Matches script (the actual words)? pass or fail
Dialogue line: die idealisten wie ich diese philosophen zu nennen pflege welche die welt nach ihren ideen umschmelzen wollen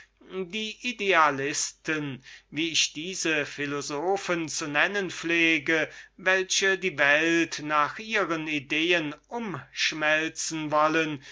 pass